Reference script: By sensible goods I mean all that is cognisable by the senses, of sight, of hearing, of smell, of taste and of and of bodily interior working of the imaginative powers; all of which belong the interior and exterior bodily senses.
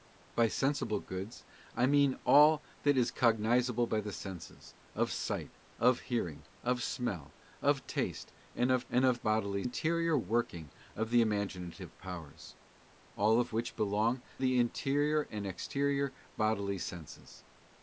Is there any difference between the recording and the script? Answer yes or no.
no